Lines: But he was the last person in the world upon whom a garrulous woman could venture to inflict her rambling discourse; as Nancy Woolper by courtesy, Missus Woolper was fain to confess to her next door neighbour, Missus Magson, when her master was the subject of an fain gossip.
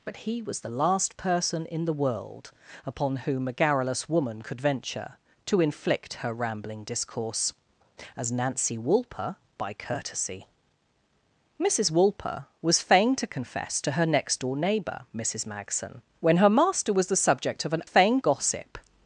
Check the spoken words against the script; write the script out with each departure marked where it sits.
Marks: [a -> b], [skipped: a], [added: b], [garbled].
But he was the last person in the world upon whom a garrulous woman could venture to inflict her rambling discourse; as Nancy Woolper by courtesy, Missus Woolper was fain to confess to her next door neighbour, Missus Magson, when her master was the subject of an fain gossip.